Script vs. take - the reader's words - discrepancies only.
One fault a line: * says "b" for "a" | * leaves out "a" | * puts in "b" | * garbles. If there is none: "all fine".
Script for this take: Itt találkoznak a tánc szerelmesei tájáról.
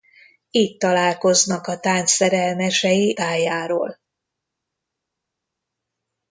all fine